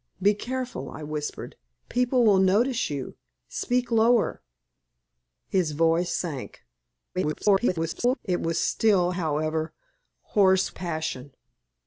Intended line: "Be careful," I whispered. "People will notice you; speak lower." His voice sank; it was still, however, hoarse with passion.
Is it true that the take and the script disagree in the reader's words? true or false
true